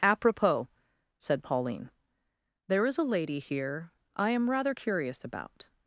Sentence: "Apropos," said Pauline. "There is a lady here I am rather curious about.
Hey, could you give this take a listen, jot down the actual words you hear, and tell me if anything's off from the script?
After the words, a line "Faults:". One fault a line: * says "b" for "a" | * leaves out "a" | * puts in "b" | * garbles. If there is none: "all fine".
"Apropos," said Pauline. "There is a lady here I am rather curious about.
Faults:
all fine